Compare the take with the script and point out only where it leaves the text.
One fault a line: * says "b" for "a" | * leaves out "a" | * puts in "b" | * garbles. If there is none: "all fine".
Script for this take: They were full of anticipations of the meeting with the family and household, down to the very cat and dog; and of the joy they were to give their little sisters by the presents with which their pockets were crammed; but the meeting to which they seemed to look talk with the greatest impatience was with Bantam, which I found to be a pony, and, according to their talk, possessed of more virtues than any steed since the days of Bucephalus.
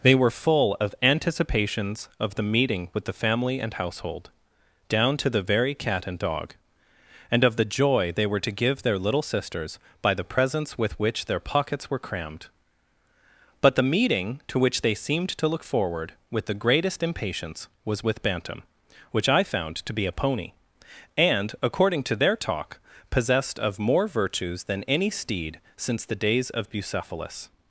* says "forward" for "talk"